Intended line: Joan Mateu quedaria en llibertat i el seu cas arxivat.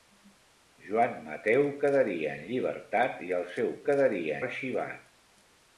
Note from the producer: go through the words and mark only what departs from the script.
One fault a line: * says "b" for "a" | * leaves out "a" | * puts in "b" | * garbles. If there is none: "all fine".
* says "quedaria" for "cas"